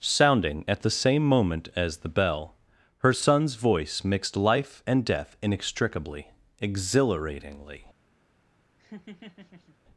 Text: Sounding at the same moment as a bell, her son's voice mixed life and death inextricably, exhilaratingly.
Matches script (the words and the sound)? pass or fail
fail